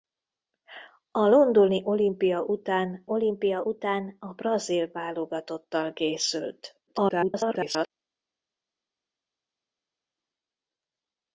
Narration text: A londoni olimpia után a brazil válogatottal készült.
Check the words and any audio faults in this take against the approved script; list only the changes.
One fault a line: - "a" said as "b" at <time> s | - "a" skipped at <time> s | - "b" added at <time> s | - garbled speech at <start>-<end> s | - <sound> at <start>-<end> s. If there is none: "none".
- "olimpia után" added at 3.1 s
- garbled speech at 6.9-7.9 s